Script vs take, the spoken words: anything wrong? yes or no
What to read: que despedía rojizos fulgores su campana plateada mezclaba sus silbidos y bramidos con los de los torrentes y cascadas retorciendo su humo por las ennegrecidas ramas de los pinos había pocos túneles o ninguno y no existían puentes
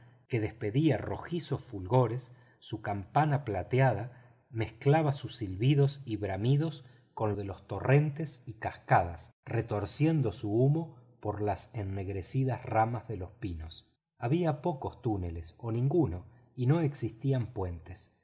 yes